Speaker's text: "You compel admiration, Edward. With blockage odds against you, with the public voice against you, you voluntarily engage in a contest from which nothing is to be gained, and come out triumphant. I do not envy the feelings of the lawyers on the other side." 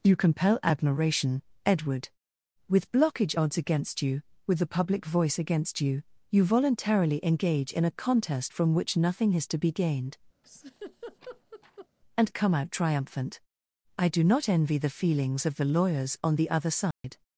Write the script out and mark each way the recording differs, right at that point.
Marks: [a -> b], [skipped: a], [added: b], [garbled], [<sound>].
"You compel admiration, Edward. With blockage odds against you, with the public voice against you, you voluntarily engage in a contest from which nothing is to be gained, [laugh] and come out triumphant. I do not envy the feelings of the lawyers on the other side." [dropout]